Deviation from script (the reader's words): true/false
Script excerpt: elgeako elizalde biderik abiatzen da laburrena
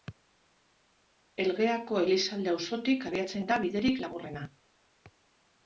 true